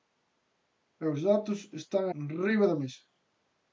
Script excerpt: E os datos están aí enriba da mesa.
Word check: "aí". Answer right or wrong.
wrong